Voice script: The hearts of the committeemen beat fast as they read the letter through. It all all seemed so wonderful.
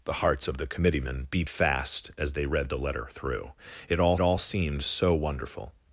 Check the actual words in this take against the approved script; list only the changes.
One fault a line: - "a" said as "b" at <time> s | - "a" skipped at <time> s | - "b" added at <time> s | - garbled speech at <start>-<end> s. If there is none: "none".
none